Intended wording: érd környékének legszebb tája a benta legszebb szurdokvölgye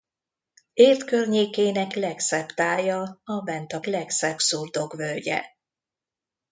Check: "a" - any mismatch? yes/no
no